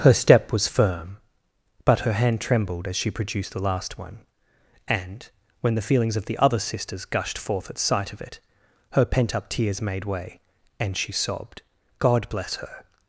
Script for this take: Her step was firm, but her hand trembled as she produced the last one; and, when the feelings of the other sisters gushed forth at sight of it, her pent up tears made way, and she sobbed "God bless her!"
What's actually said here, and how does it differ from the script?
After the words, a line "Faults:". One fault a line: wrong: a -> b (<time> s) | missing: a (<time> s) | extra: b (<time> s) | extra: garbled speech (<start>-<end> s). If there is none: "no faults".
Her step was firm, but her hand trembled as she produced the last one; and, when the feelings of the other sisters gushed forth at sight of it, her pent up tears made way, and she sobbed "God bless her!"
Faults:
no faults